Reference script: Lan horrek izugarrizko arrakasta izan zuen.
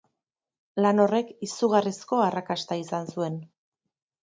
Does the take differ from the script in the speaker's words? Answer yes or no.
no